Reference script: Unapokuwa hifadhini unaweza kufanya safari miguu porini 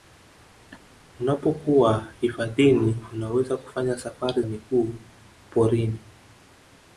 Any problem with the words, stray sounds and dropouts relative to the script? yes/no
yes